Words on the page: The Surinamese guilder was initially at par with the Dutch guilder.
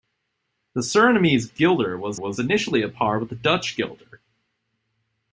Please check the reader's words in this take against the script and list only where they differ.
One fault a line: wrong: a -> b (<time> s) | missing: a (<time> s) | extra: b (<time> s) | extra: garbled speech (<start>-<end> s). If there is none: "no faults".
extra: was (2.1 s)